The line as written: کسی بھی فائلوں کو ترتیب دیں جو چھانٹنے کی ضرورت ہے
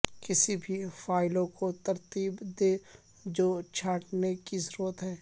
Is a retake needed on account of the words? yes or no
no